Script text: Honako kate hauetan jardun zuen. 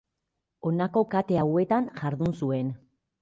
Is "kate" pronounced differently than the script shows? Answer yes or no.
no